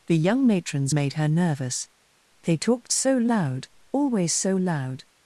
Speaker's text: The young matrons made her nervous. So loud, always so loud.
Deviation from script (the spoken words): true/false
true